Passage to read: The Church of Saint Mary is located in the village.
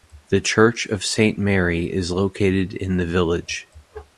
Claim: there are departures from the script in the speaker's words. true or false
false